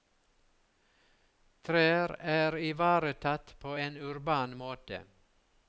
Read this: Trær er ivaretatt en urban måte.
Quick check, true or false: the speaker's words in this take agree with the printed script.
false